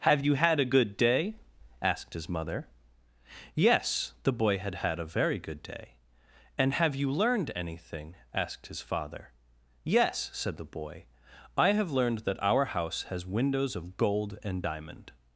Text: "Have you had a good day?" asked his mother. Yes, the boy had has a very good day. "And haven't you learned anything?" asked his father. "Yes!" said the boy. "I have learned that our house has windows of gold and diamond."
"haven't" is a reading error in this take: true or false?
true